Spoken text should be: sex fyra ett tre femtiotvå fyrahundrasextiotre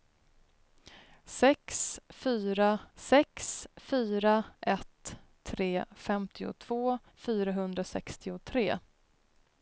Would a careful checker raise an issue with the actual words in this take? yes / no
yes